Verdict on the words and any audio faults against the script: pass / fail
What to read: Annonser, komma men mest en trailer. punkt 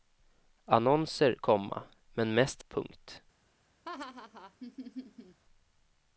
fail